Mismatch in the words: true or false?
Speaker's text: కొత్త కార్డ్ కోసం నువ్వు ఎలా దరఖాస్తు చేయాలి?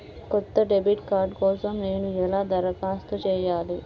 true